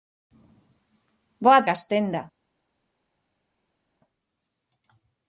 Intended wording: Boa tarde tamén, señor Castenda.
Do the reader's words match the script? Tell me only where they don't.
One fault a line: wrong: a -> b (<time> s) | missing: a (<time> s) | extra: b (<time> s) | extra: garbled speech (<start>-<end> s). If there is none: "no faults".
missing: tarde tamén señor (1.6 s)